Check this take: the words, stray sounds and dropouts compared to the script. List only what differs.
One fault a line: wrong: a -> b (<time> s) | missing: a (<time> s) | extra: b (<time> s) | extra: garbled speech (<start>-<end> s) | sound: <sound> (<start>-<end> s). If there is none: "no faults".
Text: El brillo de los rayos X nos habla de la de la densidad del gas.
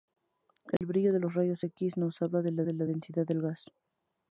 sound: dropout (0.8-0.8 s)